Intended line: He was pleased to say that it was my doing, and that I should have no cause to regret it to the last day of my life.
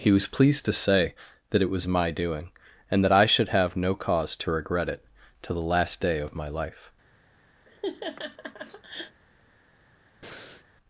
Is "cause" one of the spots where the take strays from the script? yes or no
no